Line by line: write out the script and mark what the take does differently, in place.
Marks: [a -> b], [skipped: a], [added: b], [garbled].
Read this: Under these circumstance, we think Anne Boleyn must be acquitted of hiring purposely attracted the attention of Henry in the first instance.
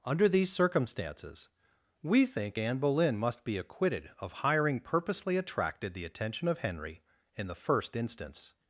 Under these [circumstance, -> circumstances] we think Anne Boleyn must be acquitted of hiring purposely attracted the attention of Henry in the first instance.